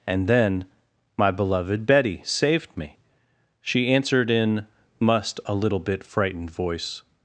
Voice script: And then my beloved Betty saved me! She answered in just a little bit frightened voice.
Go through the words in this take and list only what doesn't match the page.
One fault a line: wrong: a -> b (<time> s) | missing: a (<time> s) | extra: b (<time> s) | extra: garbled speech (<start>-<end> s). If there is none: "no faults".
wrong: just -> must (5.0 s)